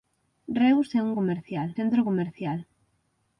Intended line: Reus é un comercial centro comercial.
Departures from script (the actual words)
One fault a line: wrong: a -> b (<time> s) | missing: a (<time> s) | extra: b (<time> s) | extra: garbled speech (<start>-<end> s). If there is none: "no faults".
no faults